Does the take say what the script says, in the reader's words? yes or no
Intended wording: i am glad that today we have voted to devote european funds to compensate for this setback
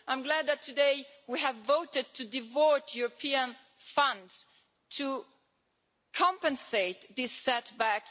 yes